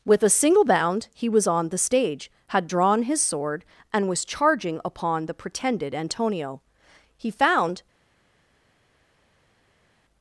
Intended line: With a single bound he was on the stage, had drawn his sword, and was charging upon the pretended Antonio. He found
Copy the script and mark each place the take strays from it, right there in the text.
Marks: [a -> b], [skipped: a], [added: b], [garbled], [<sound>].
With a single bound he was on the stage, had drawn his sword, and was charging upon the pretended Antonio. He found